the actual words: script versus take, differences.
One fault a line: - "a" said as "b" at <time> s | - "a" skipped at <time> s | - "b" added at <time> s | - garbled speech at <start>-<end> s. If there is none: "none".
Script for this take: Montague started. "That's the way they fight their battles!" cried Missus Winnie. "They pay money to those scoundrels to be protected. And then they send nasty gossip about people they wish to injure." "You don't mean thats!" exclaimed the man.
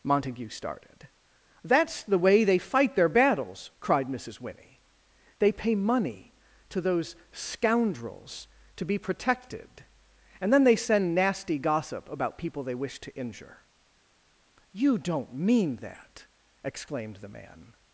- "thats" said as "that" at 15.8 s